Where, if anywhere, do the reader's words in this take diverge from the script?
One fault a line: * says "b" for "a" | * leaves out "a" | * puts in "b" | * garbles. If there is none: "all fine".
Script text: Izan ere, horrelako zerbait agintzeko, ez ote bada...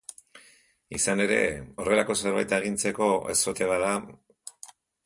all fine